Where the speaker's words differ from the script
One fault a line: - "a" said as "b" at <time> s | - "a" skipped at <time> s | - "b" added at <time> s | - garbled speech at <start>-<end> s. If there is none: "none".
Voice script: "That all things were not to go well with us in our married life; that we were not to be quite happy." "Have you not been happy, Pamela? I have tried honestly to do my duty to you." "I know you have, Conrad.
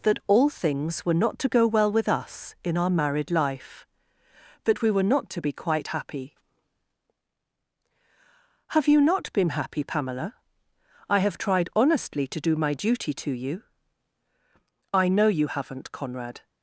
- "have" said as "haven't" at 15.5 s